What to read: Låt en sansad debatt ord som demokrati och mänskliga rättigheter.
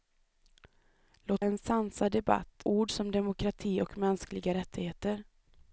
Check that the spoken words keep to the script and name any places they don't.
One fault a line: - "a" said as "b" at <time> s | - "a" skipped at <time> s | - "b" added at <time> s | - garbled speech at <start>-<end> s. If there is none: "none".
none